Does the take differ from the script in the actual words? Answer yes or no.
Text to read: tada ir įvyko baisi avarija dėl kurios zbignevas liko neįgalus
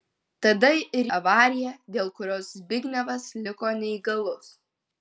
yes